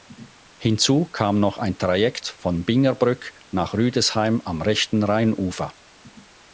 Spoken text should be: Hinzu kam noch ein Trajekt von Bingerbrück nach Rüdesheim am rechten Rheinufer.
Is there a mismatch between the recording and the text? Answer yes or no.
no